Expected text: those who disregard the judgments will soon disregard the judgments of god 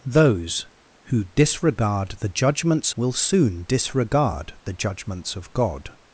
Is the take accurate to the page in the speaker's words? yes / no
yes